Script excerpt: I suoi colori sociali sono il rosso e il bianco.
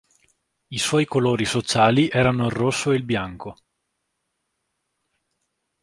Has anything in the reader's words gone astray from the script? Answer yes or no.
yes